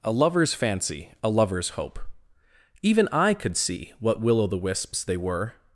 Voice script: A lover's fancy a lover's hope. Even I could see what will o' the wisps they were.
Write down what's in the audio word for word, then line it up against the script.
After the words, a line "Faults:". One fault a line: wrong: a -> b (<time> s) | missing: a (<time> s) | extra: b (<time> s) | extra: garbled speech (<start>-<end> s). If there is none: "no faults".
A lover's fancy a lover's hope. Even I could see what will o' the wisps they were.
Faults:
no faults